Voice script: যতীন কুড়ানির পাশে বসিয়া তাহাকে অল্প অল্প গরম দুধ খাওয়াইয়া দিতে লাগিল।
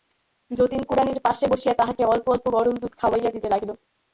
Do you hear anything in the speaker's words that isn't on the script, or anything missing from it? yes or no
no